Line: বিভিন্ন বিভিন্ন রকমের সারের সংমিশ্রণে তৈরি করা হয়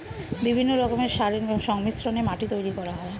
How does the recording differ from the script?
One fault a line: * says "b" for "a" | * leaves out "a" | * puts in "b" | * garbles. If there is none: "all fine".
* leaves out "বিভিন্ন"
* puts in "মাটি"